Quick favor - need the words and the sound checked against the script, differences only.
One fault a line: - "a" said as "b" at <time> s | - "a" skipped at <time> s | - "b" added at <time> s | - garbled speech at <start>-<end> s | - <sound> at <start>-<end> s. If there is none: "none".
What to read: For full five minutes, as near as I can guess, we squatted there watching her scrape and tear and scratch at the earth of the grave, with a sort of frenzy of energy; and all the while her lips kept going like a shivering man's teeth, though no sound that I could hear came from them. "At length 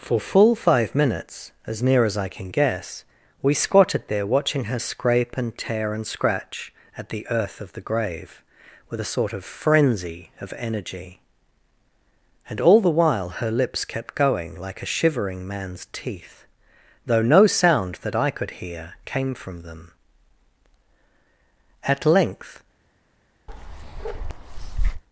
- bark at 23.5-25.0 s